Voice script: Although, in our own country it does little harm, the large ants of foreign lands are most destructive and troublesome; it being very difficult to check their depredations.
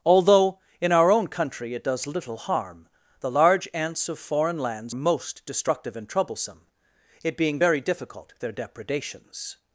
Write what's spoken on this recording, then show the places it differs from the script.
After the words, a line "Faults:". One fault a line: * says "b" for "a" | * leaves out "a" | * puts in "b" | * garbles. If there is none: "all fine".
Although, in our own country it does little harm, the large ants of foreign lands most destructive and troublesome; it being very difficult their depredations.
Faults:
* leaves out "are"
* leaves out "to check"